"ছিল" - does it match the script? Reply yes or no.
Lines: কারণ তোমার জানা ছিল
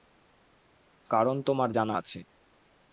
no